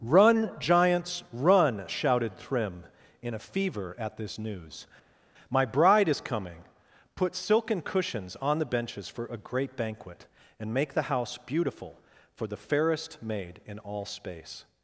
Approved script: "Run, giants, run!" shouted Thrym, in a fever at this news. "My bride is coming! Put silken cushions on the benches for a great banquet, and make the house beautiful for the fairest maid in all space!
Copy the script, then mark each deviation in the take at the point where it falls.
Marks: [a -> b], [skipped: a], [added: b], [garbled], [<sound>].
"Run, giants, run!" shouted Thrym, in a fever at this news. "My bride is coming! Put silken cushions on the benches for a great banquet, and make the house beautiful for the fairest maid in all space!